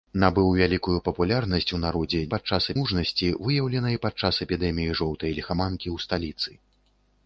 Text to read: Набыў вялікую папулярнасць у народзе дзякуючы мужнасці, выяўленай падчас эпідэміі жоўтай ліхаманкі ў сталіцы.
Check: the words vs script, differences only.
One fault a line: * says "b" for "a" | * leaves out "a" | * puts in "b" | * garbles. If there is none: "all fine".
* says "падчас" for "дзякуючы"